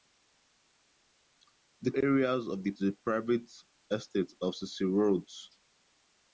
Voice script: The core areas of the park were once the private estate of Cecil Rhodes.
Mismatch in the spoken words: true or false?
true